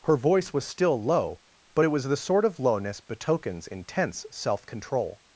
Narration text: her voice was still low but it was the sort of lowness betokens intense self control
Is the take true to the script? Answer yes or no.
yes